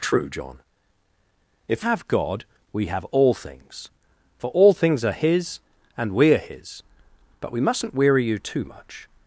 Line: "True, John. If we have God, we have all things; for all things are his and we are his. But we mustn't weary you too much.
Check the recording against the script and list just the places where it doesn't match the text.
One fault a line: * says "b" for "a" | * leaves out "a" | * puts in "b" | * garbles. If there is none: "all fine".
* leaves out "we"